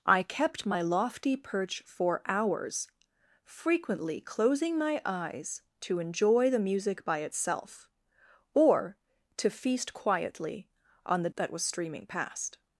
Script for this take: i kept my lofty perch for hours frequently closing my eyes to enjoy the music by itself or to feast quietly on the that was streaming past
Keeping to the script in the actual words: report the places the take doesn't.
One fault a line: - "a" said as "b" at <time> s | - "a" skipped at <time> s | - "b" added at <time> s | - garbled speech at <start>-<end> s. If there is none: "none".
none